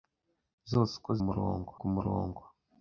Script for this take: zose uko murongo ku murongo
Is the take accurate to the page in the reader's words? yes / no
yes